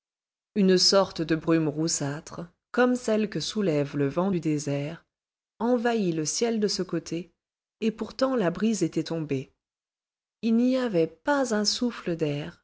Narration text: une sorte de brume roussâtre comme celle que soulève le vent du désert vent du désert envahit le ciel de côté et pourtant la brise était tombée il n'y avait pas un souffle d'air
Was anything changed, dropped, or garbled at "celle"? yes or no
no